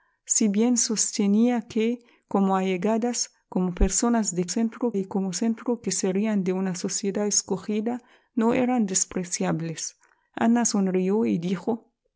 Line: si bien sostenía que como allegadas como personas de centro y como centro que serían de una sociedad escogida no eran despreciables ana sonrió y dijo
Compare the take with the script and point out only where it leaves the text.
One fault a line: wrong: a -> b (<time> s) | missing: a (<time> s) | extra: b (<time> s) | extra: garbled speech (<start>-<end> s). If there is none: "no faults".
no faults